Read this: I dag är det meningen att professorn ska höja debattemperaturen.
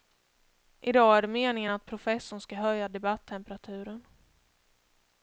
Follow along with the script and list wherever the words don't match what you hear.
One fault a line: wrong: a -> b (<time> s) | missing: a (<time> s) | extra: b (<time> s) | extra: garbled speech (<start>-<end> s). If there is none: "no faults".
no faults